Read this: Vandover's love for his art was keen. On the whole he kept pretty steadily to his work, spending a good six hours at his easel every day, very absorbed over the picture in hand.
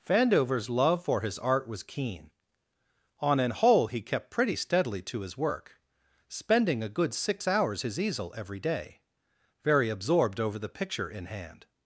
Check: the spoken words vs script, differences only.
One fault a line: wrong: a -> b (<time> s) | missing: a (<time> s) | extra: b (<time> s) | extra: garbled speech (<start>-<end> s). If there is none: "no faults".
wrong: the -> an (3.4 s)
missing: at (7.8 s)